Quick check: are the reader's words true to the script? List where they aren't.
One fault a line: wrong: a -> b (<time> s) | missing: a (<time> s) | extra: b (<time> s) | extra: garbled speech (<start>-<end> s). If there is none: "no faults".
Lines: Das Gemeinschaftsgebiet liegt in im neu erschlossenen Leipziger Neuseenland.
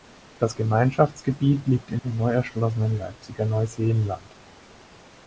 no faults